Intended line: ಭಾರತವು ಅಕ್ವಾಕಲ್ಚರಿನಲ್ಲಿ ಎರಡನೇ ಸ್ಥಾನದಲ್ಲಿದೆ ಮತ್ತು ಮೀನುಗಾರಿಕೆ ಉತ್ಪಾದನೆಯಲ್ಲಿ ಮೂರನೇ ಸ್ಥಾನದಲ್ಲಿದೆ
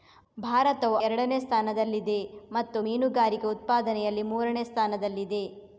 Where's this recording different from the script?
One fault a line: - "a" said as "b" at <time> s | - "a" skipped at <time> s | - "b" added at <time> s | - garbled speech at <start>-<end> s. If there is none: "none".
- "ಅಕ್ವಾಕಲ್ಚರಿನಲ್ಲಿ" skipped at 0.9 s